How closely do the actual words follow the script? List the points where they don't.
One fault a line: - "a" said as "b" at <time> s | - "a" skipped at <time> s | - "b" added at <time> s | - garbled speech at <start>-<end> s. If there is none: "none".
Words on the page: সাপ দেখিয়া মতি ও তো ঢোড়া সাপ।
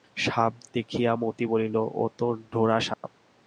- "বলিল" added at 1.4 s